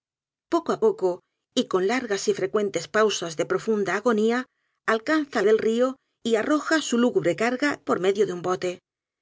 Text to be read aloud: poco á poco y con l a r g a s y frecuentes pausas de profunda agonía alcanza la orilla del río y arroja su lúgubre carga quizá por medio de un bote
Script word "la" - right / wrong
wrong